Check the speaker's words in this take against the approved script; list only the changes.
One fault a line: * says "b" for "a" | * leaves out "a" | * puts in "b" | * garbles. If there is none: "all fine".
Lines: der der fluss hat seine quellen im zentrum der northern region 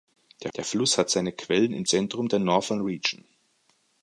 all fine